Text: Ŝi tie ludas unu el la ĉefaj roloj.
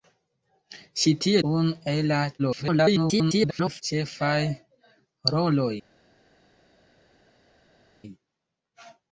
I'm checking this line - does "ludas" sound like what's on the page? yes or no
no